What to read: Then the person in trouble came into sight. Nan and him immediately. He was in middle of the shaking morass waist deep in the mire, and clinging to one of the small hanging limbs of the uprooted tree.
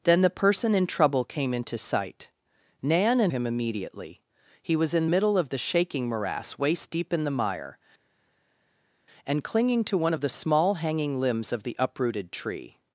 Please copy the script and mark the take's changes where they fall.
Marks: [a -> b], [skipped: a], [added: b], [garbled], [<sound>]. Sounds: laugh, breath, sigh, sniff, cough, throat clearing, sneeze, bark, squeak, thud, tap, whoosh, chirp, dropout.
Then the person in trouble came into sight. Nan and him immediately. He was in middle of the shaking morass waist deep in the mire, and clinging to one of the small hanging limbs of the uprooted tree.